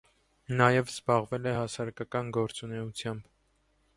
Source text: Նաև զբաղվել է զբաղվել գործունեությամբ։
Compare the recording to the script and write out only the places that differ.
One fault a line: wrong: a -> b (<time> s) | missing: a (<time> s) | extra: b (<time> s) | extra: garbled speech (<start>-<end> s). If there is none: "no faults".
wrong: զբաղվել -> հասարակական (1.5 s)